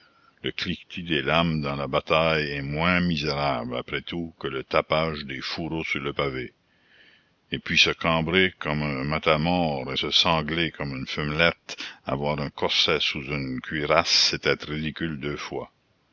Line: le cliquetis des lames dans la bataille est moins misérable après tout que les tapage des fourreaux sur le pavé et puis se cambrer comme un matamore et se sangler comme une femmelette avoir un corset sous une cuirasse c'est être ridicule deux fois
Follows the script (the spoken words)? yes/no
no